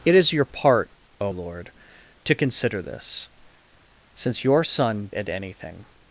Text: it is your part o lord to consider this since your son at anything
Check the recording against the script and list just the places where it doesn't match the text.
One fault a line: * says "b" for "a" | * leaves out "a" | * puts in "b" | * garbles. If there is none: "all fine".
all fine